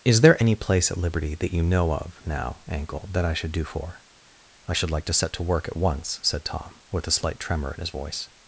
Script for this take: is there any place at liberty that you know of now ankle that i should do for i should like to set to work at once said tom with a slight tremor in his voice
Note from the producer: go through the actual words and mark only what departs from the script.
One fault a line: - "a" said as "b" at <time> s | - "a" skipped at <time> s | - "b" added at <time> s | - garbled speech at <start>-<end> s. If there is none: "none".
none